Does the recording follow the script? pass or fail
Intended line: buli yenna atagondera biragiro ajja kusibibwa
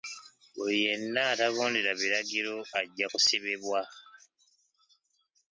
pass